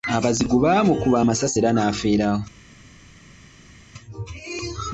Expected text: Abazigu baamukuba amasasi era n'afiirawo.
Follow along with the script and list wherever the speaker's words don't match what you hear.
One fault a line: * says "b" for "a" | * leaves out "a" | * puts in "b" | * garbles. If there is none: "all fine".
all fine